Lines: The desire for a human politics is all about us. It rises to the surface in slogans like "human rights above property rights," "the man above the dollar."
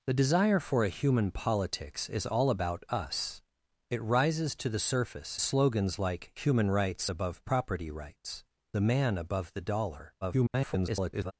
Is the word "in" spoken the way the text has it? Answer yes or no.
no